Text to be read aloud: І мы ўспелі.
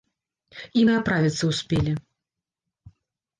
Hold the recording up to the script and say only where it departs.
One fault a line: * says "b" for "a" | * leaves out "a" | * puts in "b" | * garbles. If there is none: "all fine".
* puts in "аправіцца"